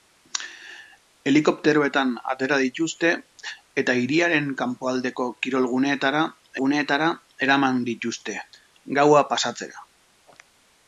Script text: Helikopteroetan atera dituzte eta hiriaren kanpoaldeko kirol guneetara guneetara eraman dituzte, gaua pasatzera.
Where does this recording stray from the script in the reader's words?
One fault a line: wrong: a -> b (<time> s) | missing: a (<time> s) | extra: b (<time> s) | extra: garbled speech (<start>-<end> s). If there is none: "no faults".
no faults